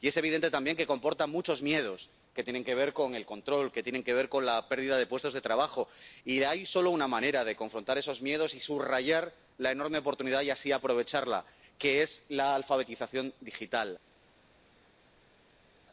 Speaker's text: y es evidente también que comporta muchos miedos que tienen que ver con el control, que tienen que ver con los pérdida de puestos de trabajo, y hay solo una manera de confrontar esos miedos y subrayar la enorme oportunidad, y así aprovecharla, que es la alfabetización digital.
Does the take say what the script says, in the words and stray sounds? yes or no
no